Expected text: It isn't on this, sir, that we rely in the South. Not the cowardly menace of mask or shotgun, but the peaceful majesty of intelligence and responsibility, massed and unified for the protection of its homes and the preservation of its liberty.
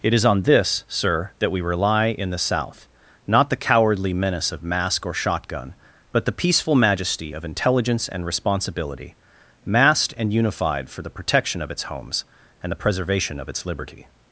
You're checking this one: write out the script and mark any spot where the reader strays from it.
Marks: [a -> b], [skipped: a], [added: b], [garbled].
It [isn't -> is] on this, sir, that we rely in the South. Not the cowardly menace of mask or shotgun, but the peaceful majesty of intelligence and responsibility, massed and unified for the protection of its homes and the preservation of its liberty.